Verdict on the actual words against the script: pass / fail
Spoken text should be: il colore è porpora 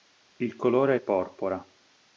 pass